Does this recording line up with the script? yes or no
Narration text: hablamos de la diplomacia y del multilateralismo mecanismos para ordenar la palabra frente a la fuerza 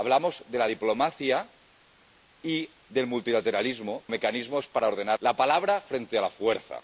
yes